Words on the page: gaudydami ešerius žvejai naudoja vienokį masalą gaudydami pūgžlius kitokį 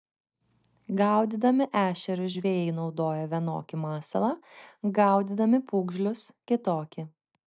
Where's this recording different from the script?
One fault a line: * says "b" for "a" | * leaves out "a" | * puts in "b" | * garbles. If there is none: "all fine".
all fine